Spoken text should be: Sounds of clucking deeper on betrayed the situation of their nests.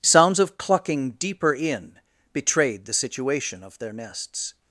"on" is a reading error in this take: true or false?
true